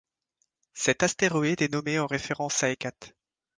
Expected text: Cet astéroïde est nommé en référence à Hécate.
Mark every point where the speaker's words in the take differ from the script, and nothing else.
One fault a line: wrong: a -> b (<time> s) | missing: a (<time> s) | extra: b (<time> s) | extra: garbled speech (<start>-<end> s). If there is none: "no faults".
no faults